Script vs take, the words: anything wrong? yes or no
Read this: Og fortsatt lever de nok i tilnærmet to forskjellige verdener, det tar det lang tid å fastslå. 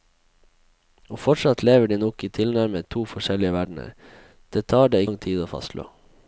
no